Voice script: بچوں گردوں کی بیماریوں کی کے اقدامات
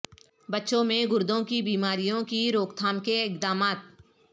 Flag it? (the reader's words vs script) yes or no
yes